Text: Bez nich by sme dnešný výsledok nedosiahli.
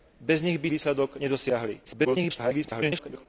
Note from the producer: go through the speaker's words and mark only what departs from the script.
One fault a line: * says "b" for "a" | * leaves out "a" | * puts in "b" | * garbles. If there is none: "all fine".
* leaves out "sme dnešný"
* garbles